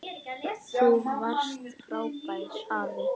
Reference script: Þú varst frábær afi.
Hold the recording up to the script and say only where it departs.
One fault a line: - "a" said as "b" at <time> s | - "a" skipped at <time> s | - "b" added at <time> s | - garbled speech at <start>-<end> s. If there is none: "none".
none